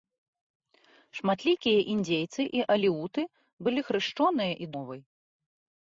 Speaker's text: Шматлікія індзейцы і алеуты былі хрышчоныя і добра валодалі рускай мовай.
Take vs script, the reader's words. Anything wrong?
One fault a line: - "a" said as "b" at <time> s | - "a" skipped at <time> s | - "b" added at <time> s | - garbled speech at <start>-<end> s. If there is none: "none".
- "добра валодалі рускай" skipped at 4.7 s